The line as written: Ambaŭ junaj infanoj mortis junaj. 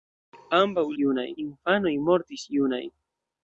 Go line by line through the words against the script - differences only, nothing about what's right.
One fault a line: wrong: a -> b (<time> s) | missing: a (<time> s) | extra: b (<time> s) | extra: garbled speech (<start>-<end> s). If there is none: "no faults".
no faults